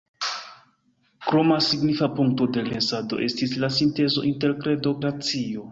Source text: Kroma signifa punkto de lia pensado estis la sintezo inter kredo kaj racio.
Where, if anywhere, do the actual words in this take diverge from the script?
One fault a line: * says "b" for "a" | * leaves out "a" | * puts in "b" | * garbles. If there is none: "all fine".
* leaves out "lia"
* leaves out "kaj"